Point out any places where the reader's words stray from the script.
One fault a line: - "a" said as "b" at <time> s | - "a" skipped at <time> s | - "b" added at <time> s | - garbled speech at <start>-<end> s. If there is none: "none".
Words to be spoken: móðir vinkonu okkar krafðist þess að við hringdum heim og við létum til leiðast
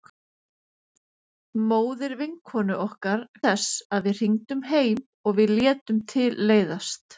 - "krafðist" skipped at 3.3 s